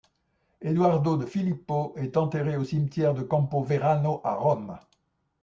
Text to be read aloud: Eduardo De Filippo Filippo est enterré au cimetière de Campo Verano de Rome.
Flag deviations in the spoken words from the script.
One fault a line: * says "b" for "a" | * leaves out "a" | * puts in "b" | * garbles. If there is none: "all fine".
* leaves out "Filippo"
* says "à" for "de"